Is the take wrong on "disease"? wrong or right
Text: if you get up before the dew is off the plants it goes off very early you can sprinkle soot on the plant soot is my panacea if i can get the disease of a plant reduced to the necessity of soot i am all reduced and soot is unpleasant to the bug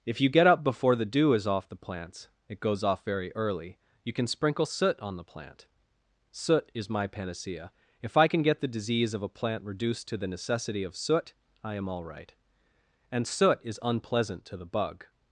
right